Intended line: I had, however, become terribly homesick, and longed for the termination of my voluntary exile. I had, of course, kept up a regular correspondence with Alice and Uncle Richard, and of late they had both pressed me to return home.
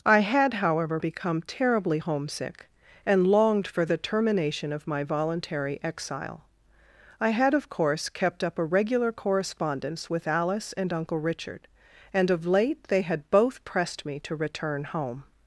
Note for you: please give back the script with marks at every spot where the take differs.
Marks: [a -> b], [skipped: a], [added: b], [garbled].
I had, however, become terribly homesick, and longed for the termination of my voluntary exile. I had, of course, kept up a regular correspondence with Alice and Uncle Richard, and of late they had both pressed me to return home.